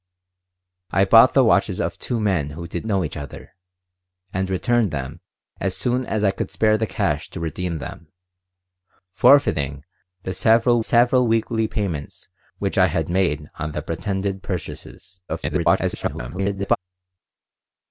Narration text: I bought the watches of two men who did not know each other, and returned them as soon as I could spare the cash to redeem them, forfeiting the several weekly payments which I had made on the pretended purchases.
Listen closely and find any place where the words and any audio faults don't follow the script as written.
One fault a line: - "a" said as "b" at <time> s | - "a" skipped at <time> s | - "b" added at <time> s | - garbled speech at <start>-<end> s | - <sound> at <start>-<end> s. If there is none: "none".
- "not" skipped at 2.9 s
- "several" added at 10.8 s
- garbled speech at 15.3-16.8 s